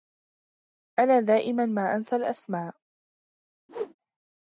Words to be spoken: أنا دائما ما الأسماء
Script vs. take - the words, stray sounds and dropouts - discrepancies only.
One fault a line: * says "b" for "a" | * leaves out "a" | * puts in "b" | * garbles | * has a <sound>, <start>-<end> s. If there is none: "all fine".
* puts in "أنسى"
* has a whoosh, 3.7-3.9 s